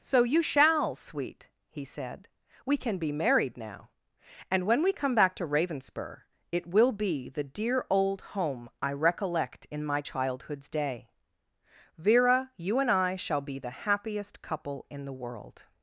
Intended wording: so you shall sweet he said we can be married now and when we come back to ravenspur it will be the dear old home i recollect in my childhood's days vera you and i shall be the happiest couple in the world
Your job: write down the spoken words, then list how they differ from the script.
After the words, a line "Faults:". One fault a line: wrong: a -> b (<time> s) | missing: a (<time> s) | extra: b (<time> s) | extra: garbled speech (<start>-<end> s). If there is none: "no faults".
so you shall sweet he said we can be married now and when we come back to ravenspur it will be the dear old home i recollect in my childhood's day vera you and i shall be the happiest couple in the world
Faults:
wrong: days -> day (10.7 s)